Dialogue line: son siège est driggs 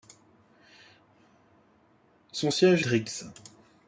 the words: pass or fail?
fail